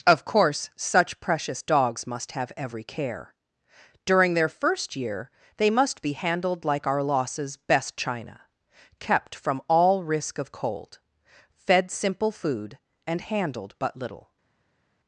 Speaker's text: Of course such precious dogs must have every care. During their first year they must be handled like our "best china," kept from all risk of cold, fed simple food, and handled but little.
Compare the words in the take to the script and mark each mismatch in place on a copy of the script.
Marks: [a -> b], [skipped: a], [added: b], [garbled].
Of course such precious dogs must have every care. During their first year they must be handled like our [added: losses] "best china," kept from all risk of cold, fed simple food, and handled but little.